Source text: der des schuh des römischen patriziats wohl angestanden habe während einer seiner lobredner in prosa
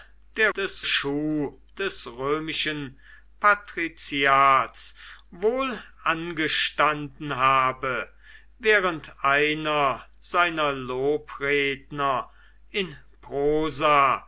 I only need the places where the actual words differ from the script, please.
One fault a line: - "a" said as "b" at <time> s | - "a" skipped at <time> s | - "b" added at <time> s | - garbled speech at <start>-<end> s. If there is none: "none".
none